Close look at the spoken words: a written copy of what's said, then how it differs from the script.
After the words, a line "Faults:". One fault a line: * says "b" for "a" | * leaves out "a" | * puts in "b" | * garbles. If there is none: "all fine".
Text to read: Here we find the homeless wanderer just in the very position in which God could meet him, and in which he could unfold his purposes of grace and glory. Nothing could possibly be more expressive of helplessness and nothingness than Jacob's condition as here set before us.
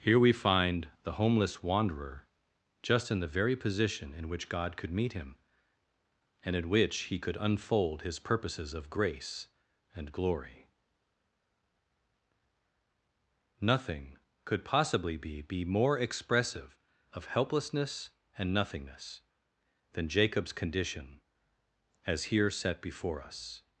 Here we find the homeless wanderer just in the very position in which God could meet him, and in which he could unfold his purposes of grace and glory. Nothing could possibly be be more expressive of helplessness and nothingness than Jacob's condition as here set before us.
Faults:
* puts in "be"